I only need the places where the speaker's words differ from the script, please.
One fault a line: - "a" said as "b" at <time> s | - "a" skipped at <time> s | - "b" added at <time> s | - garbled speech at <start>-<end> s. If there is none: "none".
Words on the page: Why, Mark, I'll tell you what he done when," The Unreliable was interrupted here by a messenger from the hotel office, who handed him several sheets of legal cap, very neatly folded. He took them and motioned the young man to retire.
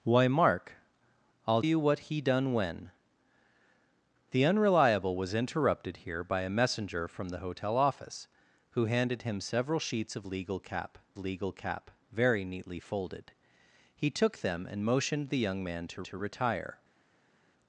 - "tell" skipped at 1.6 s
- "legal cap" added at 11.2 s
- "to" added at 16.0 s